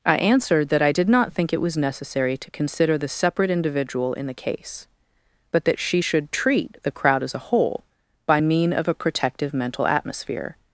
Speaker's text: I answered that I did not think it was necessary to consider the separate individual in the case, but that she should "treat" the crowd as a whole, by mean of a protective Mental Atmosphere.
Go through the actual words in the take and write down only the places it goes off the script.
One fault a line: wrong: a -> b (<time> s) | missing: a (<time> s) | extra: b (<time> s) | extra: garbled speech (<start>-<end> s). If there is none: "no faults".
no faults